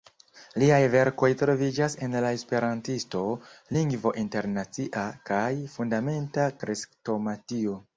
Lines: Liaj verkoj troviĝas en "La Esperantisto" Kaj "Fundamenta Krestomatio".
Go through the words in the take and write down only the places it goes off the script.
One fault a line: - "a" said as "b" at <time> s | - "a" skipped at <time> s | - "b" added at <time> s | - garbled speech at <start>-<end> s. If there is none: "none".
- "Lingvo Internacia" added at 3.8 s